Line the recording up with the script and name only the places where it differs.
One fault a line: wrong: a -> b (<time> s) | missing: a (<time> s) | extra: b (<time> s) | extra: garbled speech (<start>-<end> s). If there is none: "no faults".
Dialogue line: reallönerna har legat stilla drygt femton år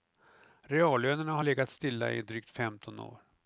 extra: i (2.1 s)